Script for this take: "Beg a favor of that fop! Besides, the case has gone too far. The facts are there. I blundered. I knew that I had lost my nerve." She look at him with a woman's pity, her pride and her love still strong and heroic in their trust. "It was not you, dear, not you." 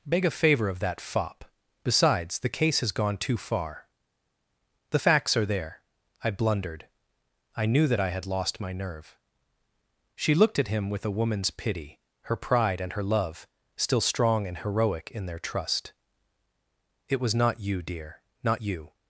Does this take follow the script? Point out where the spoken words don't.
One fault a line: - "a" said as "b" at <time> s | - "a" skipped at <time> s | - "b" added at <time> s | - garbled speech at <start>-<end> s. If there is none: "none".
- "look" said as "looked" at 10.3 s